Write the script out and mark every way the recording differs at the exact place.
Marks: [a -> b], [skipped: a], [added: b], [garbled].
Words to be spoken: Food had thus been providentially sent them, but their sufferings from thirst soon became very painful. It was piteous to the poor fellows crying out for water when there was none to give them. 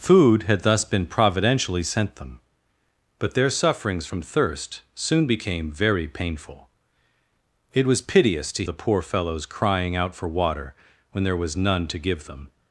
Food had thus been providentially sent them, but their sufferings from thirst soon became very painful. It was piteous to the poor fellows crying out for water when there was none to give them.